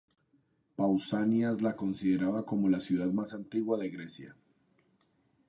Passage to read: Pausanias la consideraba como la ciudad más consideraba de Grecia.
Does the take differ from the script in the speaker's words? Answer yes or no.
yes